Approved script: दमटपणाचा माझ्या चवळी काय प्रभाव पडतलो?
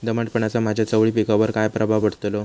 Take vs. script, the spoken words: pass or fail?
fail